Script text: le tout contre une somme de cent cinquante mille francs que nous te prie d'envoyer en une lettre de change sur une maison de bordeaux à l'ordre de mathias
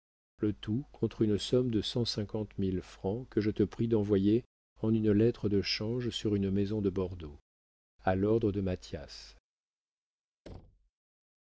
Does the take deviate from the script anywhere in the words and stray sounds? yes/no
yes